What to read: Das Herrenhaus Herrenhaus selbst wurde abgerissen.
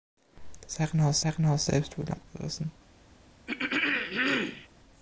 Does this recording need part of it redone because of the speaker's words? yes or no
no